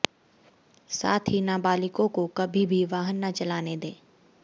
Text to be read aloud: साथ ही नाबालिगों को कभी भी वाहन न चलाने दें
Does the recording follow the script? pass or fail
pass